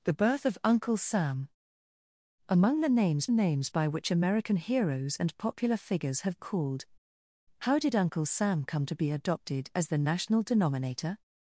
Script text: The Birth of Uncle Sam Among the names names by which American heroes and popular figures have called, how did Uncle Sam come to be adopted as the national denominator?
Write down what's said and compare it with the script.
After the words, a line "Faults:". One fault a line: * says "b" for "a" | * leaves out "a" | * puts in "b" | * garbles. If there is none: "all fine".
The Birth of Uncle Sam Among the names names by which American heroes and popular figures have called, how did Uncle Sam come to be adopted as the national denominator?
Faults:
all fine